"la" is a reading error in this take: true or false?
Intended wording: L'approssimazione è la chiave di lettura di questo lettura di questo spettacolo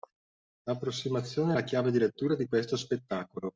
false